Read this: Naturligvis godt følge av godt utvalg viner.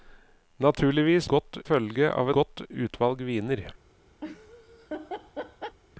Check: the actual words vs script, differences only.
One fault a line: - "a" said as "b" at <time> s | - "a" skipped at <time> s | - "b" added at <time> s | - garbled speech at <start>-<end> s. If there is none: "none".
none